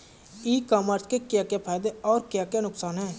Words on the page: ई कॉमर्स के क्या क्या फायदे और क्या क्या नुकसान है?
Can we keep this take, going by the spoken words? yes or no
yes